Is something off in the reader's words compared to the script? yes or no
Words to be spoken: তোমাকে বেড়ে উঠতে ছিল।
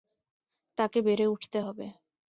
yes